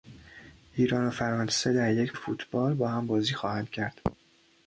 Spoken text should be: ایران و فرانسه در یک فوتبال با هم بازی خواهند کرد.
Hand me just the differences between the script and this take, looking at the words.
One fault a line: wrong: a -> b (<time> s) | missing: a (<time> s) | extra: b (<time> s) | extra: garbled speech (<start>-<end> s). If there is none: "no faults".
no faults